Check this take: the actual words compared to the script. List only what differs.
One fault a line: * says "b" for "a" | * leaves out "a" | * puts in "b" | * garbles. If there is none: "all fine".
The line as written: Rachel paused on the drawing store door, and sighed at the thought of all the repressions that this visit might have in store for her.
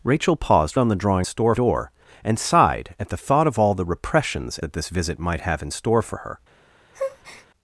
all fine